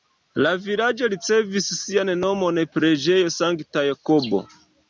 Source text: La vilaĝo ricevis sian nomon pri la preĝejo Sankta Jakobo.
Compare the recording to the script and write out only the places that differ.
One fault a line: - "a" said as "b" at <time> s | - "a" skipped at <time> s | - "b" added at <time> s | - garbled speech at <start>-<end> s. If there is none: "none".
- "pri la" skipped at 2.6 s